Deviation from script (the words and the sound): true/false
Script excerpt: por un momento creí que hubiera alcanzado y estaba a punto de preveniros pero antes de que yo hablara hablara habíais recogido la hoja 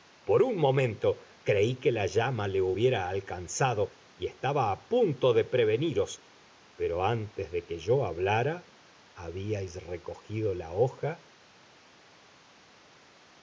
true